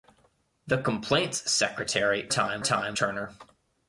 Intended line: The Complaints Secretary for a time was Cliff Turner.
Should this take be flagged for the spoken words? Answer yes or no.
yes